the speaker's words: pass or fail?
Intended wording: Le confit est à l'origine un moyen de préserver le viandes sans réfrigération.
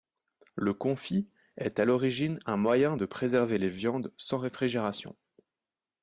fail